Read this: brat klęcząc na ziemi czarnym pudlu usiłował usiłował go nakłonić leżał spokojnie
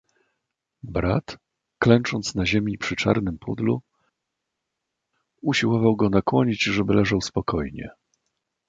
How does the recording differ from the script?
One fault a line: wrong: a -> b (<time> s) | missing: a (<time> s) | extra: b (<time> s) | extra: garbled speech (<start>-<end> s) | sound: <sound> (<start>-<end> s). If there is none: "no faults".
extra: przy (2.8 s)
missing: usiłował (6.0 s)
extra: żeby (6.6 s)